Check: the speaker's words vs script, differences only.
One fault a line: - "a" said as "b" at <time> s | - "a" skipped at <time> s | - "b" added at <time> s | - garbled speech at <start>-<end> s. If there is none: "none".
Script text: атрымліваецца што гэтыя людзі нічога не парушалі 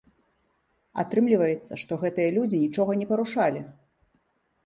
none